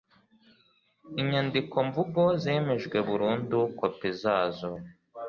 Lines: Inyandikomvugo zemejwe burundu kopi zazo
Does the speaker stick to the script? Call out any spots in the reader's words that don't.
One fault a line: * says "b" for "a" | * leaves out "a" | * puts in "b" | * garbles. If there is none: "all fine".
all fine